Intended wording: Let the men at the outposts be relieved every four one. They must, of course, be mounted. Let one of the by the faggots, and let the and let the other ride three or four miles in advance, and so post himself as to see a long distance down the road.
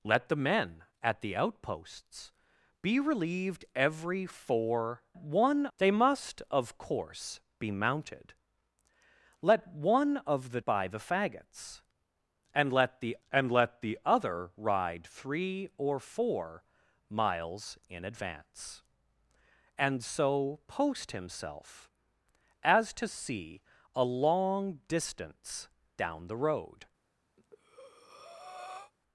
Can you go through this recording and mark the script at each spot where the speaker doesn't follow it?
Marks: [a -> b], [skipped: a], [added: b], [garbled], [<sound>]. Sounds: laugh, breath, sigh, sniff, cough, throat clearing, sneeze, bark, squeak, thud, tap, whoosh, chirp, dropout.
Let the men at the outposts be relieved every four one. They must, of course, be mounted. Let one of the by the faggots, and let the and let the other ride three or four miles in advance, and so post himself as to see a long distance down the road. [breath]